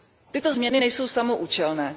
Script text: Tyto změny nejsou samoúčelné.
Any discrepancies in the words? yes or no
no